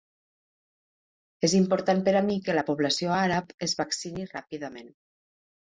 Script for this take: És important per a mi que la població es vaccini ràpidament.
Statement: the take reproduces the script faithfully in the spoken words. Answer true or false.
false